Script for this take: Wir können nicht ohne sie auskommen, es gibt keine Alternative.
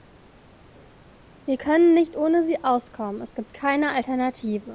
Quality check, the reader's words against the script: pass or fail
pass